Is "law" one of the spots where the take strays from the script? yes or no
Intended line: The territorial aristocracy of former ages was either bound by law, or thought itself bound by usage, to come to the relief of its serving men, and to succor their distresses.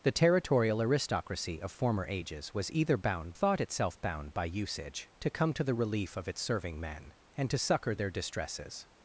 yes